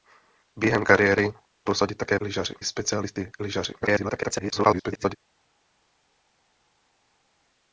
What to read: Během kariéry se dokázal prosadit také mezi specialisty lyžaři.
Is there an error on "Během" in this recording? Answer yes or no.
no